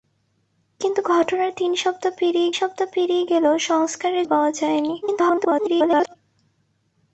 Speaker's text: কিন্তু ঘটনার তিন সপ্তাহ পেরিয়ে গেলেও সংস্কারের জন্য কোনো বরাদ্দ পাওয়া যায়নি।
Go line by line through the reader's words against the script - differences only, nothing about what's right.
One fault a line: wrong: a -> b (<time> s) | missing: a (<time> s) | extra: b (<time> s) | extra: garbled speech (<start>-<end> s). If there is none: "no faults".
extra: সপ্তাহ পেরিয়ে (2.5 s)
missing: জন্য কোনো বরাদ্দ (4.2 s)
extra: garbled speech (5.0-6.2 s)